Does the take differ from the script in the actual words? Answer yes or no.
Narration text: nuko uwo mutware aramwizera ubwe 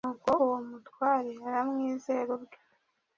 no